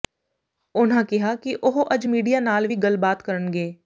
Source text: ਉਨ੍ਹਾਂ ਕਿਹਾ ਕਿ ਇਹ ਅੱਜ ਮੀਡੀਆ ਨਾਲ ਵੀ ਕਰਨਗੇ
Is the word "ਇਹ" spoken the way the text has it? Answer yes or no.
no